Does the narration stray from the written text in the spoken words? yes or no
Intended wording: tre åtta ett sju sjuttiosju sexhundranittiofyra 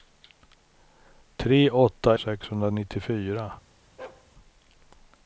yes